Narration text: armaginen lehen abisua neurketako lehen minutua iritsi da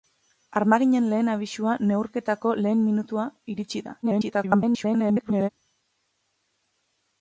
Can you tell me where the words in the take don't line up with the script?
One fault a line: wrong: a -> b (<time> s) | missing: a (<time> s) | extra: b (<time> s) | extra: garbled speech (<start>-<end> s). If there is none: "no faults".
extra: garbled speech (4.0-5.5 s)